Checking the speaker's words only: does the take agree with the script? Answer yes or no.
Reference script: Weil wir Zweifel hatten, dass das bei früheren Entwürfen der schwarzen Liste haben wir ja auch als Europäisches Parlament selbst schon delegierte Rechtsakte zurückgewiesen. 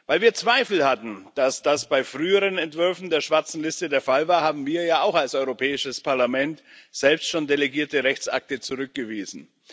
no